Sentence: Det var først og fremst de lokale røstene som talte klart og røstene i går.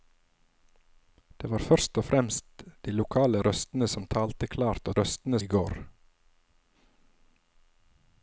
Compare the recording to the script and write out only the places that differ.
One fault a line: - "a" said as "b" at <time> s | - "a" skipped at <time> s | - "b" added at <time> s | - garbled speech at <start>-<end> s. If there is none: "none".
none